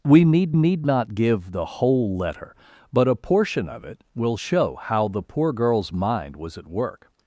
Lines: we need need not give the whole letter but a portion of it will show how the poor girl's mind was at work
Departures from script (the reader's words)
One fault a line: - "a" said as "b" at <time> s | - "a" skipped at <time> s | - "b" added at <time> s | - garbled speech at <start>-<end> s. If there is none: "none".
none